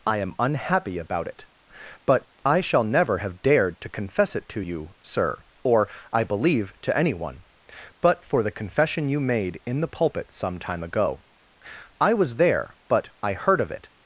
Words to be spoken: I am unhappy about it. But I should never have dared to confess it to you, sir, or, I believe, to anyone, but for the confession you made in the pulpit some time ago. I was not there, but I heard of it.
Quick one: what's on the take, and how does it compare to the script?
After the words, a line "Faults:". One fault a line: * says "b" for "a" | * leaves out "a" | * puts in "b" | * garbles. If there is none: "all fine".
I am unhappy about it. But I shall never have dared to confess it to you, sir, or, I believe, to anyone, but for the confession you made in the pulpit some time ago. I was there, but I heard of it.
Faults:
* says "shall" for "should"
* leaves out "not"